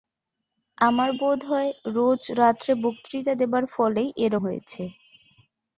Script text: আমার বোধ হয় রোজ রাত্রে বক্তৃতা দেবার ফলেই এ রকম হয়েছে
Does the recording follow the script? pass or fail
fail